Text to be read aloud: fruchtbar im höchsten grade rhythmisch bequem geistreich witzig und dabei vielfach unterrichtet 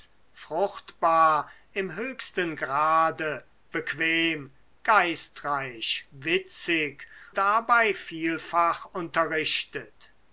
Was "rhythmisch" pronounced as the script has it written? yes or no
no